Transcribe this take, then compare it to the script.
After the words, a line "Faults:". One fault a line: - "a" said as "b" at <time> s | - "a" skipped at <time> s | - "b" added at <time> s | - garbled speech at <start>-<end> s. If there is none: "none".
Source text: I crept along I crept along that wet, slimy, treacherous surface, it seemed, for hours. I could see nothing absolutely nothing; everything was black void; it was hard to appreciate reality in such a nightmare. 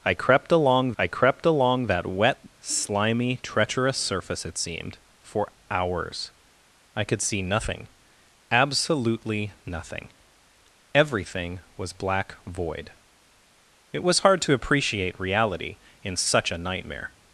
I crept along I crept along that wet, slimy, treacherous surface, it seemed, for hours. I could see nothing absolutely nothing; everything was black void; it was hard to appreciate reality in such a nightmare.
Faults:
none